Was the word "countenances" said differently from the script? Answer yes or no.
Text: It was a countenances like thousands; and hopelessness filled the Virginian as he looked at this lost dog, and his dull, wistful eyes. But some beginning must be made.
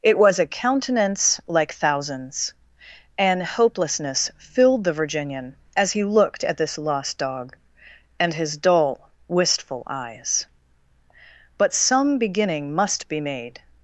yes